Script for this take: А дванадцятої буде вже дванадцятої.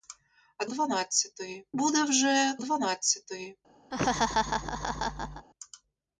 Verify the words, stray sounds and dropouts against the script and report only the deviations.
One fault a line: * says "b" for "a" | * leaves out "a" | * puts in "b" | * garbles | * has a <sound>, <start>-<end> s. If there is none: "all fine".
* has a laugh, 3.9-5.5 s